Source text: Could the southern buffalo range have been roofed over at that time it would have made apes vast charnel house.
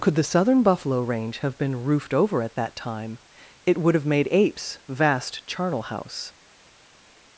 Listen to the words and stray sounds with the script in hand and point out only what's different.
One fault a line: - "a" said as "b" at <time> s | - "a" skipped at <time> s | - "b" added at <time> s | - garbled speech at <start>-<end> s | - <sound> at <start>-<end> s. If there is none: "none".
none